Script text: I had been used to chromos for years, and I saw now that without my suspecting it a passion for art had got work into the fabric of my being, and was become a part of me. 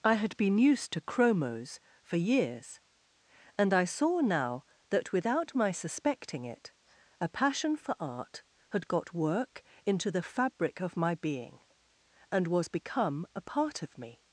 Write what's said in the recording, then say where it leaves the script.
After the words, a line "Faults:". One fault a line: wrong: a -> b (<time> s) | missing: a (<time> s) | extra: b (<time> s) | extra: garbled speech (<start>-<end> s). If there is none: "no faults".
I had been used to chromos for years, and I saw now that without my suspecting it a passion for art had got work into the fabric of my being, and was become a part of me.
Faults:
no faults